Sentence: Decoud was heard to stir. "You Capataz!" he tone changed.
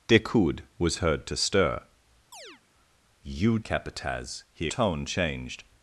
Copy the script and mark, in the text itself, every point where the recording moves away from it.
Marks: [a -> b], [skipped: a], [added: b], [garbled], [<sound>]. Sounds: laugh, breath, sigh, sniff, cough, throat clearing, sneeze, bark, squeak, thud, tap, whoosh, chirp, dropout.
Decoud was heard to stir. [chirp] "You Capataz!" he tone changed.